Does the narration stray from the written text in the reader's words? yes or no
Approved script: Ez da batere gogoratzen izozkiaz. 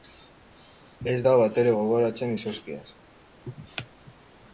no